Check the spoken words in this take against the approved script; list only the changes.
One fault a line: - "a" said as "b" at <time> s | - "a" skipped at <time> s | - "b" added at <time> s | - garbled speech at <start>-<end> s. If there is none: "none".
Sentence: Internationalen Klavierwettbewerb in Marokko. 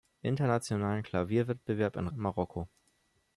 none